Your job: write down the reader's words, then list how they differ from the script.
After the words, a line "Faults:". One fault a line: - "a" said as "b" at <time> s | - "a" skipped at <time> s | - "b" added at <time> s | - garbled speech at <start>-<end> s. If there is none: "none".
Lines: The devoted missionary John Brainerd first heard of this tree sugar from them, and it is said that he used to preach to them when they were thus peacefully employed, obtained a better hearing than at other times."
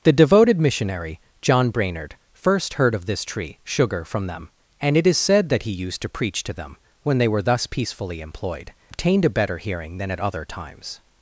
The devoted missionary John Brainerd first heard of this tree sugar from them, and it is said that he used to preach to them when they were thus peacefully employed, obtained a better hearing than at other times."
Faults:
none